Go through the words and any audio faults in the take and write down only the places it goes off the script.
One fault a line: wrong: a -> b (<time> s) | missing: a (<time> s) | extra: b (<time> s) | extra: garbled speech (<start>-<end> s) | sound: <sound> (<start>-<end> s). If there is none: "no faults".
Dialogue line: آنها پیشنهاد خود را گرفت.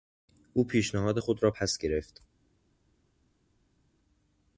wrong: آنها -> او (0.5 s)
extra: پس (1.5 s)